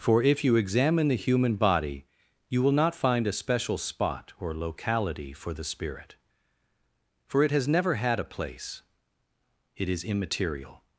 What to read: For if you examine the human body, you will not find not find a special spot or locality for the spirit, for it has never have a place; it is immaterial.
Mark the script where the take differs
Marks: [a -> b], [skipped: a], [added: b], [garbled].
For if you examine the human body, you will not find [skipped: not find] a special spot or locality for the spirit, for it has never [have -> had] a place; it is immaterial.